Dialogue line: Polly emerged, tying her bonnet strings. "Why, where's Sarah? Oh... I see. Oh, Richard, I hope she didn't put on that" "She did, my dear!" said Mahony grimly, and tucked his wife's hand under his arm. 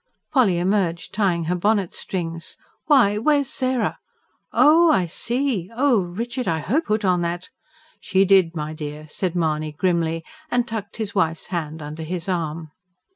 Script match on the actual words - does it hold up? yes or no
no